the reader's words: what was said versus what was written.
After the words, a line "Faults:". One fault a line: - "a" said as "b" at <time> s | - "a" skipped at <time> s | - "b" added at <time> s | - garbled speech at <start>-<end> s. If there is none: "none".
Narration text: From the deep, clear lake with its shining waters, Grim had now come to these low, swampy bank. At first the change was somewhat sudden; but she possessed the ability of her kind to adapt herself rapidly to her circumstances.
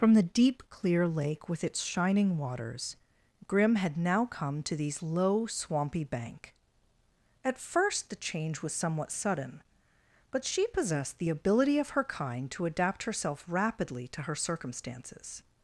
From the deep, clear lake with its shining waters, Grim had now come to these low, swampy bank. At first the change was somewhat sudden; but she possessed the ability of her kind to adapt herself rapidly to her circumstances.
Faults:
none